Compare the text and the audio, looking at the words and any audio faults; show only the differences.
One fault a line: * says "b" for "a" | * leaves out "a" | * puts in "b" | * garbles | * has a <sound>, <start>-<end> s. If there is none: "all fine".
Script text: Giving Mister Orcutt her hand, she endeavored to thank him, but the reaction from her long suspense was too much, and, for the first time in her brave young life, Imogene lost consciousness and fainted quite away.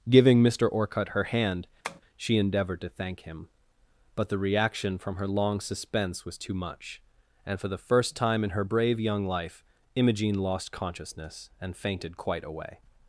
* has a tap, 1.8-2.0 s